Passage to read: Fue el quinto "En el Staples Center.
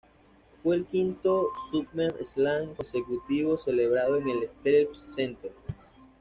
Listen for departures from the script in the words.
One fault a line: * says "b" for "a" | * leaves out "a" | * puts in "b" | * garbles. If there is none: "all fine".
* puts in "SummerSlam consecutivo celebrado"